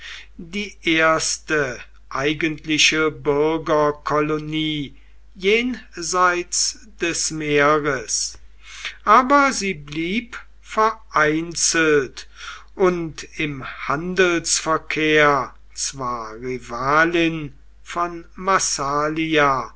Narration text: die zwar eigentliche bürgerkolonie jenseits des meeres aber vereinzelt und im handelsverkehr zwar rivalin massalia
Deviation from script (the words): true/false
true